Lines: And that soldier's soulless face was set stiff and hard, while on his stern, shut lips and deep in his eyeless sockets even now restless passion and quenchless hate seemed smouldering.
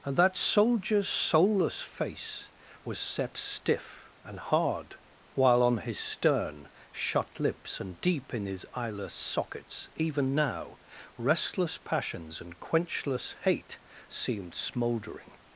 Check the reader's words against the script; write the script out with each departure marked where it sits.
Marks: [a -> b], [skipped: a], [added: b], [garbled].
And that soldier's soulless face was set stiff and hard, while on his stern, shut lips and deep in his eyeless sockets even now restless [passion -> passions] and quenchless hate seemed smouldering.